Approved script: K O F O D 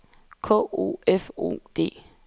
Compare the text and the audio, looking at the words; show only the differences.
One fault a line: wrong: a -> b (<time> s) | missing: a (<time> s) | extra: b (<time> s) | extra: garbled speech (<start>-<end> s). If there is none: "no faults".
no faults